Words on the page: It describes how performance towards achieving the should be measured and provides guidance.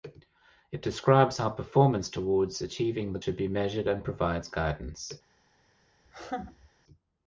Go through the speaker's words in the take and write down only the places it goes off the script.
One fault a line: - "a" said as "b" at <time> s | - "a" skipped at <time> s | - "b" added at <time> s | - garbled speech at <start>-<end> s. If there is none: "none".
none